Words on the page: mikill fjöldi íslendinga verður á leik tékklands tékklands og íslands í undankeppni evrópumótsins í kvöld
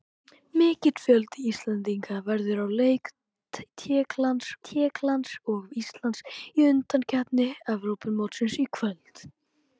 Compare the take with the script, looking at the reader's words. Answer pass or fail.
pass